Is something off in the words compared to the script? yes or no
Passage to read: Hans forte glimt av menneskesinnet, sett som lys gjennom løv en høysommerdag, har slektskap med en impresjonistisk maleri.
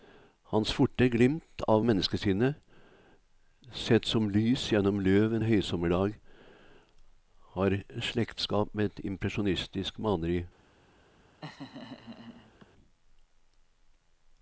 yes